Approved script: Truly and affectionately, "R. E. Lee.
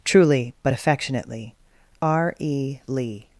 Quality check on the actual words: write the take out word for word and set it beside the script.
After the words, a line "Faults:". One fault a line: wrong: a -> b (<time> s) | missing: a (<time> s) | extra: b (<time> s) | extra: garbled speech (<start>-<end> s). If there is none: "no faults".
Truly but affectionately, "R. E. Lee.
Faults:
wrong: and -> but (0.6 s)